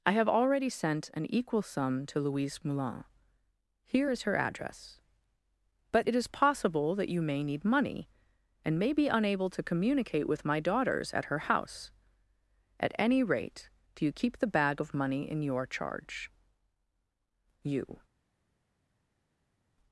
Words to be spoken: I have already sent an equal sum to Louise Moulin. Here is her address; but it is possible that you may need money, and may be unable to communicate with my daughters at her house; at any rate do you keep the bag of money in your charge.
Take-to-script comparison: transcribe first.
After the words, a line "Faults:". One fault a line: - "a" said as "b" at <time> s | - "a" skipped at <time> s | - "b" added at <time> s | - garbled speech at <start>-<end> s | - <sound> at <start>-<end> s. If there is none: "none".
I have already sent an equal sum to Louise Moulin. Here is her address; but it is possible that you may need money, and may be unable to communicate with my daughters at her house; at any rate do you keep the bag of money in your charge. "You
Faults:
- "You" added at 17.6 s